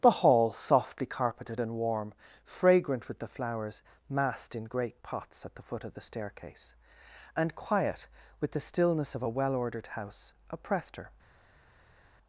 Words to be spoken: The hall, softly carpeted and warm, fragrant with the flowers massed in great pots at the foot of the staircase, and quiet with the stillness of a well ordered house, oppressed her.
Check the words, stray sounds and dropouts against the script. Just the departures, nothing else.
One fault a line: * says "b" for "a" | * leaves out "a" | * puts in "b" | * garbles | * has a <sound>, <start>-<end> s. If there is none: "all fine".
all fine